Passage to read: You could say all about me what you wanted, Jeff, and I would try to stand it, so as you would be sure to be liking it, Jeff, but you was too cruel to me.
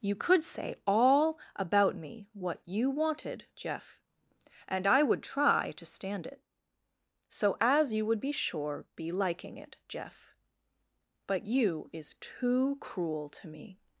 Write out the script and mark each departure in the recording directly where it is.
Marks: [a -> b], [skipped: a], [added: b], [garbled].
You could say all about me what you wanted, Jeff, and I would try to stand it, so as you would be sure [skipped: to] be liking it, Jeff, but you [was -> is] too cruel to me.